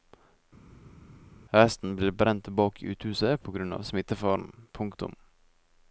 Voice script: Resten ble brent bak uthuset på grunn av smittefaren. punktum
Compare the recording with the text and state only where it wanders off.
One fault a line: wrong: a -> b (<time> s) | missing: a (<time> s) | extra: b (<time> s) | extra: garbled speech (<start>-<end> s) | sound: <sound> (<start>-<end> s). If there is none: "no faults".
no faults